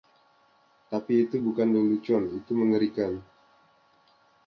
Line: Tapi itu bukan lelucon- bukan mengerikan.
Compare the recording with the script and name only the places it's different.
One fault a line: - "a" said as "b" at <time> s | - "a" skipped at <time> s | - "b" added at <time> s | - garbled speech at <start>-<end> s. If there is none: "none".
- "bukan" said as "itu" at 2.4 s